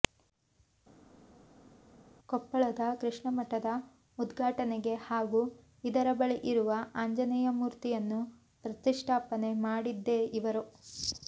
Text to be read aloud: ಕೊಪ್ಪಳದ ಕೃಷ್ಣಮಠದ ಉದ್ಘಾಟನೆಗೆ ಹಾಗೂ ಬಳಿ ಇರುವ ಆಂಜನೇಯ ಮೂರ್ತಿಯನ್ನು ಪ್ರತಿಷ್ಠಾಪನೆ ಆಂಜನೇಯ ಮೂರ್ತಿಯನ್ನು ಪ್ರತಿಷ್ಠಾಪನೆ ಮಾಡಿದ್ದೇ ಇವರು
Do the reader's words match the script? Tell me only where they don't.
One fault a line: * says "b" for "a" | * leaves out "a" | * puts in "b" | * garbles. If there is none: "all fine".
* puts in "ಇದರ"
* leaves out "ಆಂಜನೇಯ ಮೂರ್ತಿಯನ್ನು ಪ್ರತಿಷ್ಠಾಪನೆ"